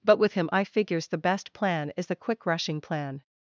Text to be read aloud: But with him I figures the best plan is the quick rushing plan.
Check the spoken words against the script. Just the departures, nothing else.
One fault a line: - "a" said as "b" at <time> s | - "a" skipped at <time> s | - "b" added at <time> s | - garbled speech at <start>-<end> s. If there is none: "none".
none